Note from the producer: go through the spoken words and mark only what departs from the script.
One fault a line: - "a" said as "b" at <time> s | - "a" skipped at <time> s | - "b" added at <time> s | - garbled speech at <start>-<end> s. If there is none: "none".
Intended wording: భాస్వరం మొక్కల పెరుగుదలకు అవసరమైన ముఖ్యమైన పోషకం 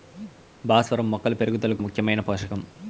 - "అవసరమైన" skipped at 1.8 s